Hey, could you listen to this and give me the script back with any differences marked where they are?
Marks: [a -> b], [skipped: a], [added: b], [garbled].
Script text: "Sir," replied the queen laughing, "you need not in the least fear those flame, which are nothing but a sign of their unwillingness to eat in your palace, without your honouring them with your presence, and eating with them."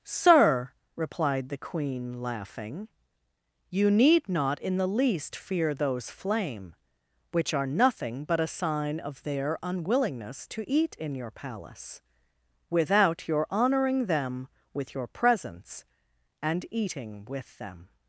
"Sir," replied the queen laughing, "you need not in the least fear those flame, which are nothing but a sign of their unwillingness to eat in your palace, without your honouring them with your presence, and eating with them."